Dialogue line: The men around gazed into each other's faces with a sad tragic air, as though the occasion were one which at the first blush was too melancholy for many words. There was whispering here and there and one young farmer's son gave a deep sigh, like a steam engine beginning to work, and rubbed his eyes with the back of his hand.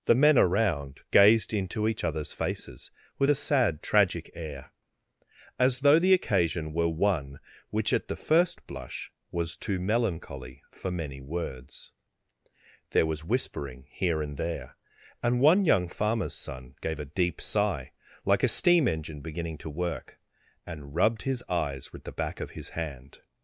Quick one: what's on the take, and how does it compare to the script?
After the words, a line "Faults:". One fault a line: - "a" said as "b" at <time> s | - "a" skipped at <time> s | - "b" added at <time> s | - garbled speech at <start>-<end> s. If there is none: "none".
The men around gazed into each other's faces with a sad tragic air, as though the occasion were one which at the first blush was too melancholy for many words. There was whispering here and there and one young farmer's son gave a deep sigh, like a steam engine beginning to work, and rubbed his eyes with the back of his hand.
Faults:
none